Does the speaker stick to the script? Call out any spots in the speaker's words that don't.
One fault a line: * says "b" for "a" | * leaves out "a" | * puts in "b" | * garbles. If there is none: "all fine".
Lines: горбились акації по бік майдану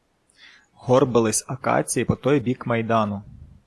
* puts in "той"